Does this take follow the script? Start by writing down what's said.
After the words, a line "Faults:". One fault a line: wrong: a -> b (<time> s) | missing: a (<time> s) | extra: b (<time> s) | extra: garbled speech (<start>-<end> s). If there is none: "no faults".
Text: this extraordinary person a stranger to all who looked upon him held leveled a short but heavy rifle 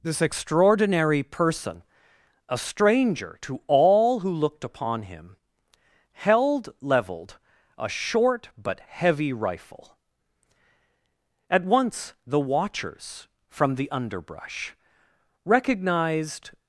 this extraordinary person a stranger to all who looked upon him held leveled a short but heavy rifle at once the watchers from the underbrush recognized
Faults:
extra: at once the watchers from the underbrush recognized (11.5 s)